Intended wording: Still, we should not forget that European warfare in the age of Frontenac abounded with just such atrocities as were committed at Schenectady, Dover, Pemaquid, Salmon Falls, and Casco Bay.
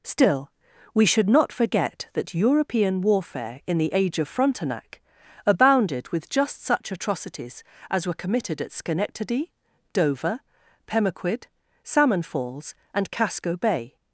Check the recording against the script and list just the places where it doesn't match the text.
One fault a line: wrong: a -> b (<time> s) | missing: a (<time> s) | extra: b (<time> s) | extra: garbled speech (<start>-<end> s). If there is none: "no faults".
no faults